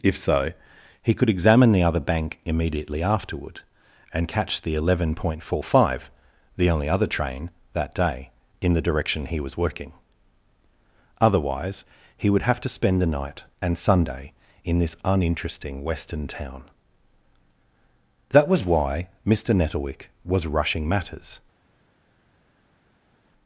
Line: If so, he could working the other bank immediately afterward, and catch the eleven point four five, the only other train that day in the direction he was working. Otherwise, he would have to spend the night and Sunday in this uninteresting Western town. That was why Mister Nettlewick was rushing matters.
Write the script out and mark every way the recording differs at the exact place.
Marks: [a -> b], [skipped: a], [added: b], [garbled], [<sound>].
If so, he could [working -> examine] the other bank immediately afterward, and catch the eleven point four five, the only other train that day in the direction he was working. Otherwise, he would have to spend the night and Sunday in this uninteresting Western town. That was why Mister Nettlewick was rushing matters.